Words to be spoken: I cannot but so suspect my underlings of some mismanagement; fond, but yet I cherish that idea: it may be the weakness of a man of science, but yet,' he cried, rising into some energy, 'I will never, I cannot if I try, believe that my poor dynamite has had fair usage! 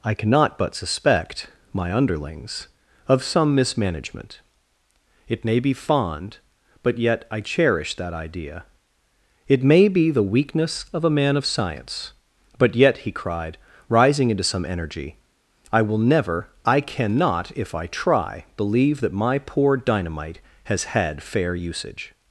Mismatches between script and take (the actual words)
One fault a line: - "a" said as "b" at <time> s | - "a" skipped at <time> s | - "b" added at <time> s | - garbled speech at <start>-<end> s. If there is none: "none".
- "so" skipped at 0.7 s
- "it may be" added at 5.3 s